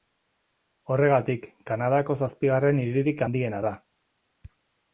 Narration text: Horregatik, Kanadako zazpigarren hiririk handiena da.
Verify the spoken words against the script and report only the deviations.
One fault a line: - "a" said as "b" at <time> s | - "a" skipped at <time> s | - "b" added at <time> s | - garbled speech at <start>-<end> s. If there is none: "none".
none